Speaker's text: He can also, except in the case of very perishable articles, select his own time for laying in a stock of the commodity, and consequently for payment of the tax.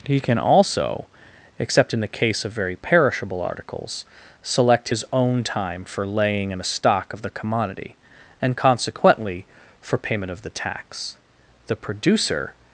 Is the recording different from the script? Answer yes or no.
yes